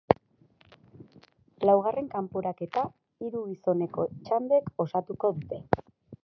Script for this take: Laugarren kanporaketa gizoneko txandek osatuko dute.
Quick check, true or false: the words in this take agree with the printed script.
false